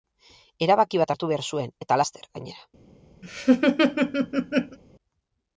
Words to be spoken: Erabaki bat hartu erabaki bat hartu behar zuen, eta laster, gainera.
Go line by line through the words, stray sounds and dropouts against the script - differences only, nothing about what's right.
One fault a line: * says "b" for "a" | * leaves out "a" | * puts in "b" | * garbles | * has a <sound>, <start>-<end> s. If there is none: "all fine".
* leaves out "erabaki bat hartu"
* has a laugh, 3.2-4.8 s